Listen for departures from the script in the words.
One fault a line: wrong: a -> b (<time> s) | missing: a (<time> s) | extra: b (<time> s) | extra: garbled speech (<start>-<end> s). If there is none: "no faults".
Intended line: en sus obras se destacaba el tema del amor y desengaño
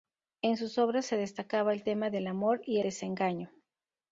no faults